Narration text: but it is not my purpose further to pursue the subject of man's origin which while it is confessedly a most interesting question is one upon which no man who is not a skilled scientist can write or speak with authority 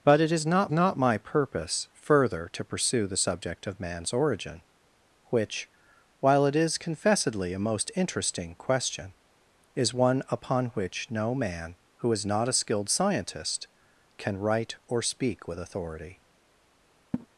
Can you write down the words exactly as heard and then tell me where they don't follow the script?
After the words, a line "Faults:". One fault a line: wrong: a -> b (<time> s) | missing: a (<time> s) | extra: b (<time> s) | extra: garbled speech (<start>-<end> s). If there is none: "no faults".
but it is not not my purpose further to pursue the subject of man's origin which while it is confessedly a most interesting question is one upon which no man who is not a skilled scientist can write or speak with authority
Faults:
extra: not (0.7 s)